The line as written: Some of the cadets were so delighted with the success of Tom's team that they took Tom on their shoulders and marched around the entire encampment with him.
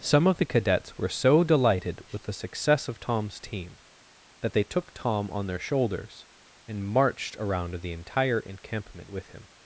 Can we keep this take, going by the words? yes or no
yes